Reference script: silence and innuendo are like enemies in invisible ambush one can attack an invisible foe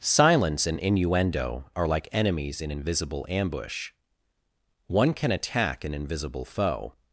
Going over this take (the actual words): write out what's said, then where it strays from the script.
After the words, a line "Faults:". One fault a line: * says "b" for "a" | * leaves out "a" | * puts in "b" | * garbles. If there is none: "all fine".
silence and innuendo are like enemies in invisible ambush one can attack an invisible foe
Faults:
all fine